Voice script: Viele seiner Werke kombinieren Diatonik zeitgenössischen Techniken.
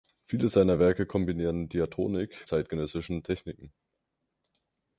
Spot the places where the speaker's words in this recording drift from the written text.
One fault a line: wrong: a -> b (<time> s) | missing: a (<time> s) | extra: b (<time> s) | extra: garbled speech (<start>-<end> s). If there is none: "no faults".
no faults